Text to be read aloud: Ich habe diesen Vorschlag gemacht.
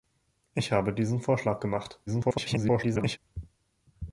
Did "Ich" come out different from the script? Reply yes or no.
no